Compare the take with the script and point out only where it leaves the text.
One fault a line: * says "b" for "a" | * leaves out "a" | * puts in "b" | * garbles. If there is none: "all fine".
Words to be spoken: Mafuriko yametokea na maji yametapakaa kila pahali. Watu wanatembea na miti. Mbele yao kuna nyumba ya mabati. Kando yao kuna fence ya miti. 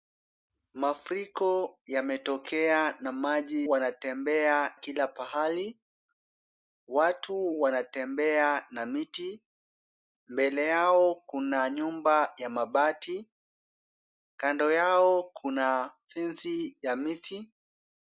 * says "wanatembea" for "yametapakaa"